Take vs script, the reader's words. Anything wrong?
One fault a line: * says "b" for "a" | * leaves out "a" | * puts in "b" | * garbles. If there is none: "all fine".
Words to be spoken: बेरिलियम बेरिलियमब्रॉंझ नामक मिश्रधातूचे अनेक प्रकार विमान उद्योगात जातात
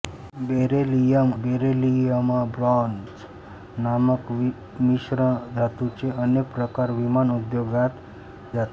all fine